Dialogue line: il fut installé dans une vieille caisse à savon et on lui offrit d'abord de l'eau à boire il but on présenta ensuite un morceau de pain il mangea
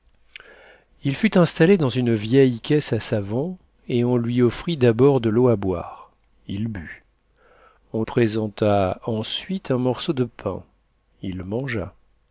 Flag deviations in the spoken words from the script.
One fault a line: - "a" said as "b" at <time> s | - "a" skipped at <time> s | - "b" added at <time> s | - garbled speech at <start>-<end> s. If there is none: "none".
none